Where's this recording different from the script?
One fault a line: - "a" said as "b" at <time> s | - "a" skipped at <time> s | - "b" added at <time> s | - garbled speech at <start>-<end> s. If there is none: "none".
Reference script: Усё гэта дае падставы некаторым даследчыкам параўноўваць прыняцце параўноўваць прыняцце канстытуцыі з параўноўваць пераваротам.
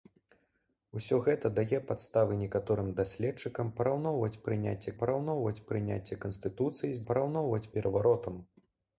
none